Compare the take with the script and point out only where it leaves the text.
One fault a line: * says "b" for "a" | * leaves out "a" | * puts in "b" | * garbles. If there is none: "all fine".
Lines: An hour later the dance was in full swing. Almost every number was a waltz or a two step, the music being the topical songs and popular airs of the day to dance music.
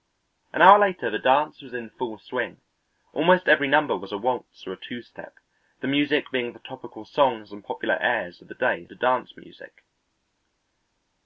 all fine